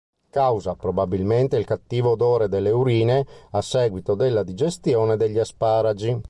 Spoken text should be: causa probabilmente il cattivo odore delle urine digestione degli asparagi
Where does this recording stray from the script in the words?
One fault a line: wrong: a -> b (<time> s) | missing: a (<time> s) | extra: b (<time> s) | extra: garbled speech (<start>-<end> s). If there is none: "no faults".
extra: a seguito della (3.5 s)